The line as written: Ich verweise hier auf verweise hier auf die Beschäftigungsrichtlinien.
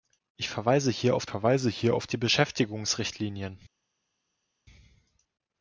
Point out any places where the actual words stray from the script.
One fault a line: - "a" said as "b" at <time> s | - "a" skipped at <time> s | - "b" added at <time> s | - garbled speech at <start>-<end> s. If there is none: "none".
none